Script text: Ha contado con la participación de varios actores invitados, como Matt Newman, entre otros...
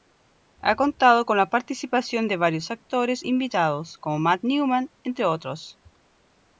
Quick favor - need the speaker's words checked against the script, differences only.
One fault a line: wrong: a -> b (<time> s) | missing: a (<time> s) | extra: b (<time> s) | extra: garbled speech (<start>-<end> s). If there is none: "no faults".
no faults